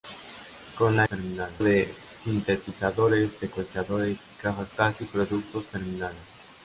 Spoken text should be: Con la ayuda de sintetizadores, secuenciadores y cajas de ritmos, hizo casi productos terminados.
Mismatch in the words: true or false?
true